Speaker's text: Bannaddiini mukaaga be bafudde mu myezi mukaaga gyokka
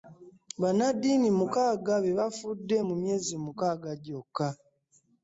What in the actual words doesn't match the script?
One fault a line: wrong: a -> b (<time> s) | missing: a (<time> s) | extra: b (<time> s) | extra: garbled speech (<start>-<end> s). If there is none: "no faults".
no faults